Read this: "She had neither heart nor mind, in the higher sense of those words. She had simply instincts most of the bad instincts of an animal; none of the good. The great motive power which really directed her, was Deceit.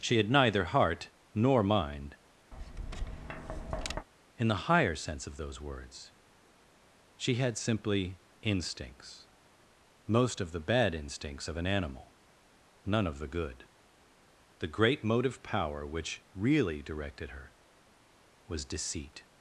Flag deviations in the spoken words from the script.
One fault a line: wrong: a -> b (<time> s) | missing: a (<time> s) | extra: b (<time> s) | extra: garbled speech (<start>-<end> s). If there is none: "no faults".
no faults